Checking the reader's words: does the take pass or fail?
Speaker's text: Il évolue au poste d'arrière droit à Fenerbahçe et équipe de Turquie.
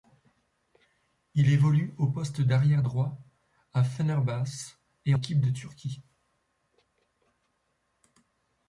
pass